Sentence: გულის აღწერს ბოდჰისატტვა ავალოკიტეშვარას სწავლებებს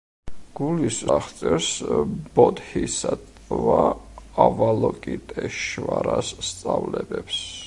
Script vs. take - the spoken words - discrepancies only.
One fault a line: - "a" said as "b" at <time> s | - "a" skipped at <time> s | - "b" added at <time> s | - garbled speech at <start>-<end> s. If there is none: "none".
none